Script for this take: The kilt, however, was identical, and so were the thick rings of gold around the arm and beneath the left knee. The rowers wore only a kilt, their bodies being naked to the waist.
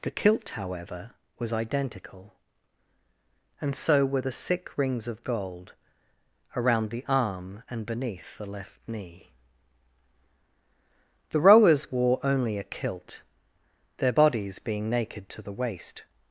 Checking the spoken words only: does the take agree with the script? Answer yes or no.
no